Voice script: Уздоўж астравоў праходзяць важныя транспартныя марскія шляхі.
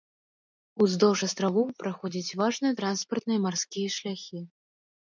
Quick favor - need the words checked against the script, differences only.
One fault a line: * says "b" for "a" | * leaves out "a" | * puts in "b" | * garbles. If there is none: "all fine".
all fine